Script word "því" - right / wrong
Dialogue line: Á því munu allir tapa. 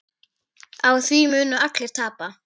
right